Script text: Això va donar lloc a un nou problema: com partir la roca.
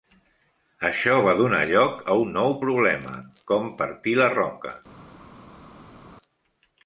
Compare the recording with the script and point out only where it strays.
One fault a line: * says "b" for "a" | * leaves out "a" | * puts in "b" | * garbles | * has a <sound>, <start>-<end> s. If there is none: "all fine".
all fine